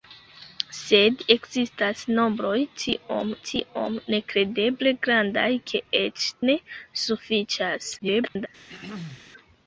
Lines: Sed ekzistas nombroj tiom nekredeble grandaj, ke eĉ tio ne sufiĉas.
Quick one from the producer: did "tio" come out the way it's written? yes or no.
no